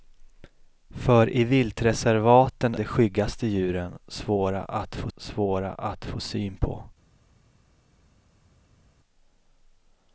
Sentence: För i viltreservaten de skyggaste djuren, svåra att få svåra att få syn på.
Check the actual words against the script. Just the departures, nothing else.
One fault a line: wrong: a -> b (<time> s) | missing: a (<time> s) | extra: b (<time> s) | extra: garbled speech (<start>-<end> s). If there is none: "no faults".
no faults